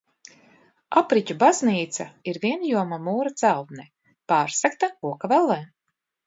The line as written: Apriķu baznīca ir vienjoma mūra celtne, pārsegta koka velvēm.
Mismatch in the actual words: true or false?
false